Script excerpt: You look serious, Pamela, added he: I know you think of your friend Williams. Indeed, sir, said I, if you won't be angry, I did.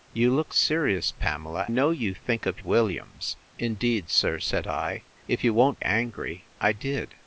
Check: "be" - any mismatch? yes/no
yes